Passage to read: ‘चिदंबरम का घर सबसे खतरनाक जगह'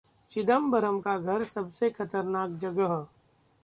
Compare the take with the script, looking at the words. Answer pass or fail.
pass